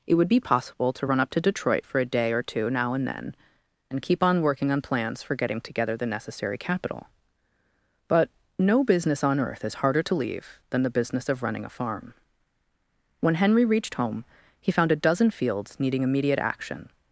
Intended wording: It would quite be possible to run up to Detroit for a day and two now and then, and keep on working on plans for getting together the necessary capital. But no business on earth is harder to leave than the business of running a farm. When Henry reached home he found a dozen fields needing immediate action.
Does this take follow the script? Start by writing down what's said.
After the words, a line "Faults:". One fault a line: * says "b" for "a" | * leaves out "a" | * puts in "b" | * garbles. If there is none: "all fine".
It would be possible to run up to Detroit for a day or two now and then, and keep on working on plans for getting together the necessary capital. But no business on earth is harder to leave than the business of running a farm. When Henry reached home he found a dozen fields needing immediate action.
Faults:
* leaves out "quite"
* says "or" for "and"